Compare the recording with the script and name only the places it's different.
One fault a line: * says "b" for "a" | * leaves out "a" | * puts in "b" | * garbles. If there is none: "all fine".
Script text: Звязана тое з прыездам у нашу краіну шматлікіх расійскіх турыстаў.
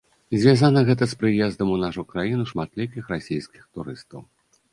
* says "гэта" for "тое"